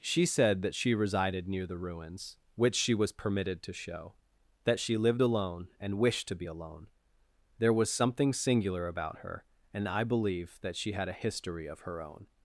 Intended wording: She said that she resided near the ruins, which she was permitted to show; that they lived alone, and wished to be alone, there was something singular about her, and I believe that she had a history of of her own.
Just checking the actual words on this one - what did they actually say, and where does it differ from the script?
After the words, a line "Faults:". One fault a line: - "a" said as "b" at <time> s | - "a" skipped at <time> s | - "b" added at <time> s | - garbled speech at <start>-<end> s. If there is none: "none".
She said that she resided near the ruins, which she was permitted to show; that she lived alone, and wished to be alone, there was something singular about her, and I believe that she had a history of her own.
Faults:
- "they" said as "she" at 4.8 s
- "of" skipped at 11.8 s